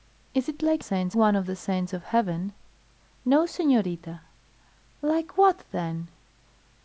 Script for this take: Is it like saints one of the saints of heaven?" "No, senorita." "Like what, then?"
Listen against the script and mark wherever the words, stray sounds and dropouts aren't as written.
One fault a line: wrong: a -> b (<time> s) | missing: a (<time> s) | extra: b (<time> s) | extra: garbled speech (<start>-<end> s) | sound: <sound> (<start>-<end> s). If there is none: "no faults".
no faults